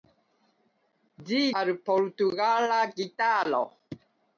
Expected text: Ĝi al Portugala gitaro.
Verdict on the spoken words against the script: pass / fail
pass